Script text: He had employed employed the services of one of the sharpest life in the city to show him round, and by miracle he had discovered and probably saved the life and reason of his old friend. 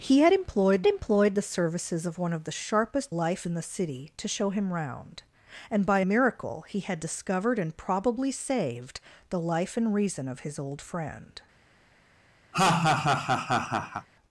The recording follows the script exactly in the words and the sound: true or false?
false